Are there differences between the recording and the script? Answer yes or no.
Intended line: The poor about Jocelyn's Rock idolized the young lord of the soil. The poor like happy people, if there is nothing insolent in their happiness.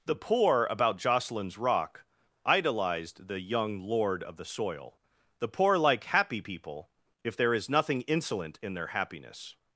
no